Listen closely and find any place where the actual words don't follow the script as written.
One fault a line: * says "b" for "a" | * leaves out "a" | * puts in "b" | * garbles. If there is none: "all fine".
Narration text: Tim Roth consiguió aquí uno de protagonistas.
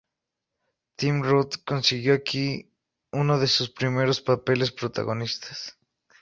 * puts in "sus primeros papeles"